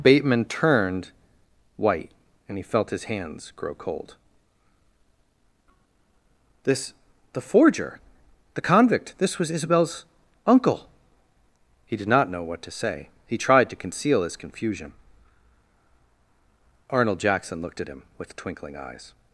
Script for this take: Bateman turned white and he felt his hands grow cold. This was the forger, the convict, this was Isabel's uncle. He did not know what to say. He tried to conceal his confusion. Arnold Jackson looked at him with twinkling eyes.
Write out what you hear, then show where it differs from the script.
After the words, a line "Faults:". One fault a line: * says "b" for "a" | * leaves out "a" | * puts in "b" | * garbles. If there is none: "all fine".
Bateman turned white and he felt his hands grow cold. This the forger, the convict, this was Isabel's uncle. He did not know what to say. He tried to conceal his confusion. Arnold Jackson looked at him with twinkling eyes.
Faults:
* leaves out "was"